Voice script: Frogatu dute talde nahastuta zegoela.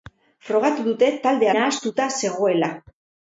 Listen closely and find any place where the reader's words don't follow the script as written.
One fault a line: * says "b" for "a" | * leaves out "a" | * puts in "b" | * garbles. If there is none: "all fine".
all fine